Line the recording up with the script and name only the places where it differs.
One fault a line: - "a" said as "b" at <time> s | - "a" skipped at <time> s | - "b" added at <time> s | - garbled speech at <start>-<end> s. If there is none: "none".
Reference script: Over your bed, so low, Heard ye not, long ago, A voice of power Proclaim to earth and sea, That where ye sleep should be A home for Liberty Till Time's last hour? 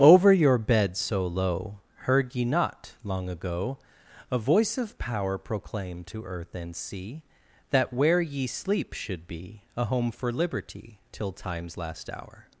none